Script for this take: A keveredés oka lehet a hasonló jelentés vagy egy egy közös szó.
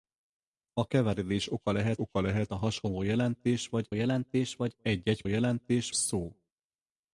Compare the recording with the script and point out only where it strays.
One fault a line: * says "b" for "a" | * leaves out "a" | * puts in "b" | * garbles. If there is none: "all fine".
* puts in "oka lehet"
* puts in "jelentés vagy"
* says "jelentés" for "közös"